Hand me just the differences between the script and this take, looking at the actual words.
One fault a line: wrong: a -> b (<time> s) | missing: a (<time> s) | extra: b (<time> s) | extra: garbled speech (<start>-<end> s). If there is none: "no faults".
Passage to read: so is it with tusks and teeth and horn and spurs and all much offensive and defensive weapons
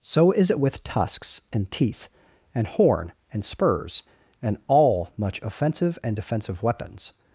no faults